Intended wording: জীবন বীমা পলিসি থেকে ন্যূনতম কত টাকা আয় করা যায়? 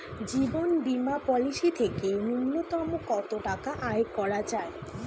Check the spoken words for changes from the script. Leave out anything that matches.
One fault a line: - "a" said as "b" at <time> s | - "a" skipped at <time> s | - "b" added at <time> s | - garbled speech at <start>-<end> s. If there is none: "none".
none